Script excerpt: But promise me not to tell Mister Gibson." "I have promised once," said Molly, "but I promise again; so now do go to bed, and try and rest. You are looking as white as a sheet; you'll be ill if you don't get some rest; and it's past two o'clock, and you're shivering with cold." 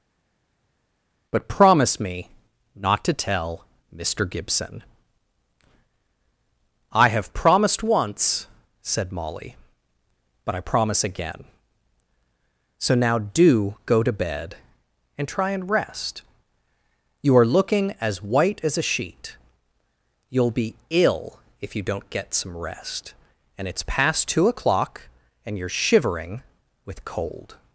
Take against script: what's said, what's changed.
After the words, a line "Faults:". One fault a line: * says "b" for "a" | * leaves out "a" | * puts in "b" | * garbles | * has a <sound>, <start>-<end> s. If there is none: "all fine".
But promise me not to tell Mister Gibson." "I have promised once," said Molly, "but I promise again; so now do go to bed, and try and rest. You are looking as white as a sheet; you'll be ill if you don't get some rest; and it's past two o'clock, and you're shivering with cold."
Faults:
all fine